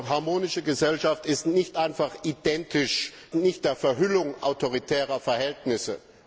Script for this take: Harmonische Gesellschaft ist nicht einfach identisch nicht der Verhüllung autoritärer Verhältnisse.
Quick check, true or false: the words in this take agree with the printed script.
true